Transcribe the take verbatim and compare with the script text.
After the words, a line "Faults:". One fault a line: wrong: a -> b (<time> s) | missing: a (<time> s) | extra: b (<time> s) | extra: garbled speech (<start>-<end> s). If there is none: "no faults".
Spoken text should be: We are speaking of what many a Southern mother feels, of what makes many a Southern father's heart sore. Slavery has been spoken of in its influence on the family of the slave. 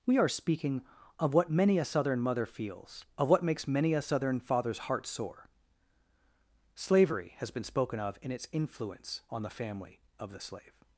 We are speaking of what many a Southern mother feels, of what makes many a Southern father's heart sore. Slavery has been spoken of in its influence on the family of the slave.
Faults:
no faults